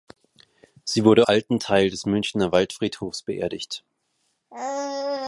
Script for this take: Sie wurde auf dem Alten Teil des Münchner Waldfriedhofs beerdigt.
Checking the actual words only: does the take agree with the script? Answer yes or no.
no